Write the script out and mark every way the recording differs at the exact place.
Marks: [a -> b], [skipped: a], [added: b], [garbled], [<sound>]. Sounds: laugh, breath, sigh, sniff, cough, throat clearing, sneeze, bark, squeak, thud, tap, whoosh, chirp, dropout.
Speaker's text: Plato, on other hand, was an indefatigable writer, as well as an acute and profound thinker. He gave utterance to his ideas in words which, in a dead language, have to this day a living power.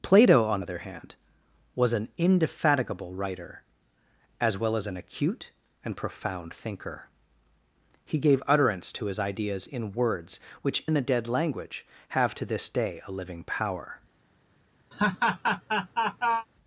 Plato, on other hand, was an indefatigable writer, as well as an acute and profound thinker. He gave utterance to his ideas in words which, in a dead language, have to this day a living power. [laugh]